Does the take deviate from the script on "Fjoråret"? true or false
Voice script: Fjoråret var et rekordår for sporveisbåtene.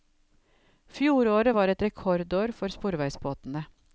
false